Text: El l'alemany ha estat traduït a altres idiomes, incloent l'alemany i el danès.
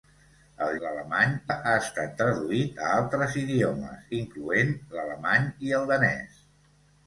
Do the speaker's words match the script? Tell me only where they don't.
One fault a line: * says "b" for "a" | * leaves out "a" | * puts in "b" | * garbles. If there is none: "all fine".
all fine